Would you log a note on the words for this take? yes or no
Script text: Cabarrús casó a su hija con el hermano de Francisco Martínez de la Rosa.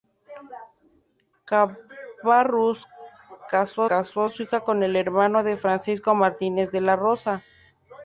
yes